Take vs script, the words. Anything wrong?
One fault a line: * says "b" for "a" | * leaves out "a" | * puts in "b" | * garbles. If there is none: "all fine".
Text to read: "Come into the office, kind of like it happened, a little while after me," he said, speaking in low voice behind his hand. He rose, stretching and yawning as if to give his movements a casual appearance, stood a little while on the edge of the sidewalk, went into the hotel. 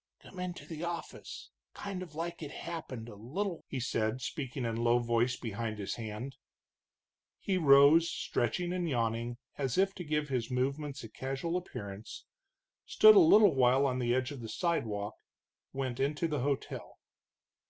* leaves out "while after me"